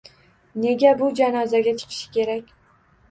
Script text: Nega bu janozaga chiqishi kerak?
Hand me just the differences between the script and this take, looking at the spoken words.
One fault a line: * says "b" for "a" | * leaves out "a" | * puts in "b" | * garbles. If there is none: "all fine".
all fine